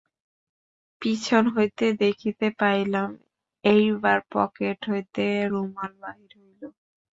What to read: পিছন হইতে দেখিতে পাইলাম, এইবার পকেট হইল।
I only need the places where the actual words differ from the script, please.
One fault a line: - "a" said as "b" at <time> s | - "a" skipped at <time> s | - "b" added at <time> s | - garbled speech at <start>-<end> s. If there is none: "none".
- "হইতে রুমাল বাহির" added at 4.9 s